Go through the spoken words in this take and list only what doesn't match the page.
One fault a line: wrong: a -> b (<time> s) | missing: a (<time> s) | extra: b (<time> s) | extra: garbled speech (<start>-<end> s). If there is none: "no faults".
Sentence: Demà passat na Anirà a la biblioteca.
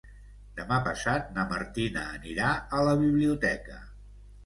extra: Martina (1.6 s)